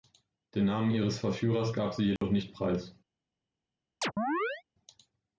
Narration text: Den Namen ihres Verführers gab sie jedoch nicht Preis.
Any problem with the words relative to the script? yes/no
no